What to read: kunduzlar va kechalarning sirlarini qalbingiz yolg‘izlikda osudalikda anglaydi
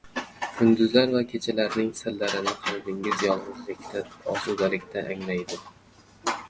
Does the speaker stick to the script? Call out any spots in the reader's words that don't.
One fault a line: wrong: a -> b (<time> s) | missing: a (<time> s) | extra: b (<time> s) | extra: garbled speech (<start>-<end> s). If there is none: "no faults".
no faults